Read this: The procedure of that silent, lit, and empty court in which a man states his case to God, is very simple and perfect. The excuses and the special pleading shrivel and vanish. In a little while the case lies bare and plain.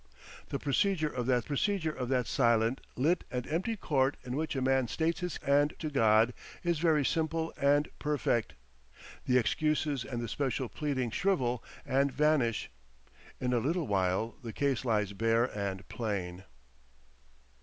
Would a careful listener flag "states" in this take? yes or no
no